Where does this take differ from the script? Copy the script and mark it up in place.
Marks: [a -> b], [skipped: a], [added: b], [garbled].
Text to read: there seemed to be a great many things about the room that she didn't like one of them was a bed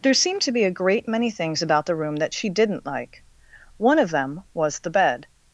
there seemed to be a great many things about the room that she didn't like one of them was [a -> the] bed